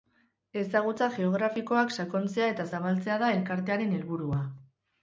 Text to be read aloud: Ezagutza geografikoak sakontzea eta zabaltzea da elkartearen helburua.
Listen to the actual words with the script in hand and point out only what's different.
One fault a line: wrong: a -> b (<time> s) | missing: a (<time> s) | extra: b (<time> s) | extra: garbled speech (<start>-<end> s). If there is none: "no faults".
no faults